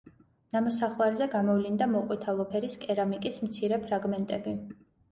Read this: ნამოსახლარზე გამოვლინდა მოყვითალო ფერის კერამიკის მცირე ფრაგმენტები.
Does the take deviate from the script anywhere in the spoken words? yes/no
no